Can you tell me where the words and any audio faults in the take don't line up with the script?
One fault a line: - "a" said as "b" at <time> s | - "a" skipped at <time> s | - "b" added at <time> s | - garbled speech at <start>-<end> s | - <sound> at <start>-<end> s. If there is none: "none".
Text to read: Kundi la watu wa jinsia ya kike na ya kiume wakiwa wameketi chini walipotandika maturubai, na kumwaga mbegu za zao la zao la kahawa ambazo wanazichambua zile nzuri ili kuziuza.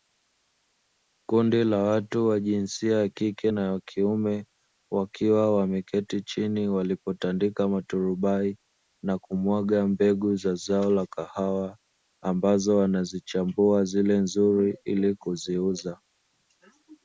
- "zao la" skipped at 11.1 s